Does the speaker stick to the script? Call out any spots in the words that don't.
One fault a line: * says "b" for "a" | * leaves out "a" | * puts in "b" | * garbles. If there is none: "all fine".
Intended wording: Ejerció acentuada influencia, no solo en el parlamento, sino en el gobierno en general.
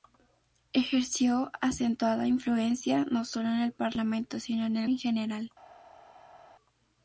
* leaves out "gobierno"